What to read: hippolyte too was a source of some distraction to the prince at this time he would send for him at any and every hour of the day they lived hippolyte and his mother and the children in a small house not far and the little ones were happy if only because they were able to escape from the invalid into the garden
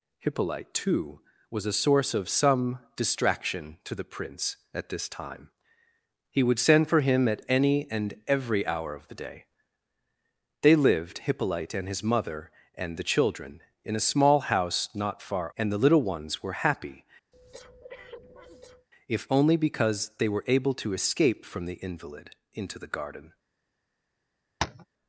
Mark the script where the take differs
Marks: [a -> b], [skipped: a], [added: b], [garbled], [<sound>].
hippolyte too was a source of some distraction to the prince at this time he would send for him at any and every hour of the day they lived hippolyte and his mother and the children in a small house not far and the little ones were happy [breath] if only because they were able to escape from the invalid into the garden [tap]